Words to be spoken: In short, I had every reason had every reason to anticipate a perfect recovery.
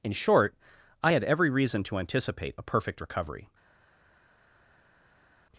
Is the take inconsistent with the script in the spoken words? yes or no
yes